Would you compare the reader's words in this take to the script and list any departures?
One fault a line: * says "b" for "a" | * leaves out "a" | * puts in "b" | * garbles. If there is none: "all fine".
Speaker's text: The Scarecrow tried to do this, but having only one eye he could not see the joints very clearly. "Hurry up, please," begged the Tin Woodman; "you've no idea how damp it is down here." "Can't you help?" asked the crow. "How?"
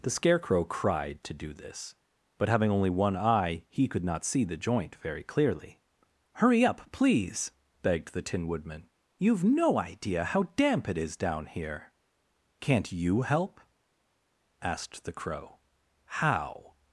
* says "cried" for "tried"
* says "joint" for "joints"